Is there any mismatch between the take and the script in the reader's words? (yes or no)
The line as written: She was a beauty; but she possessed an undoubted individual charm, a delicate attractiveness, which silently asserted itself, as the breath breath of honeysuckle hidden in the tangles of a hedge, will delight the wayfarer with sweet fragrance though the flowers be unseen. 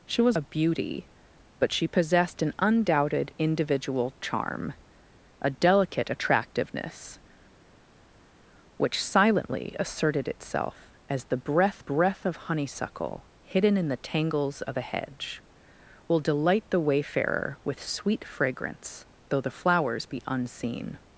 no